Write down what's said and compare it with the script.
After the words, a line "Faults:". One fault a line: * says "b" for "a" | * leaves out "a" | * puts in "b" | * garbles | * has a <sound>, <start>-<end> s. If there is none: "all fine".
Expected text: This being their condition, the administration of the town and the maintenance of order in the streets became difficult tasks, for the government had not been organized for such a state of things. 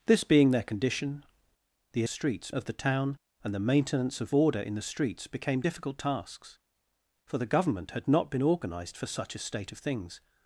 This being their condition, the streets of the town and the maintenance of order in the streets became difficult tasks, for the government had not been organized for such a state of things.
Faults:
* says "streets" for "administration"